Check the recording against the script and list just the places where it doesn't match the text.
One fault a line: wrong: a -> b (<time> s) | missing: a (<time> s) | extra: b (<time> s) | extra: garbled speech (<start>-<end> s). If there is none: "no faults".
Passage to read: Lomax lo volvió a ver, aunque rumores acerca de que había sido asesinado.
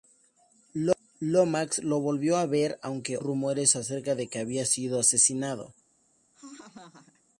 no faults